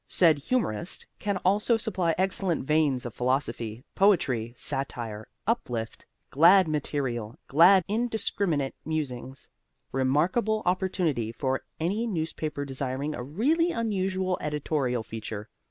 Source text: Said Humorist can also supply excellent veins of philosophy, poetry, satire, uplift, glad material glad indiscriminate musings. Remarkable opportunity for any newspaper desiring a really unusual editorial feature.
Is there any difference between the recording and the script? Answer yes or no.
no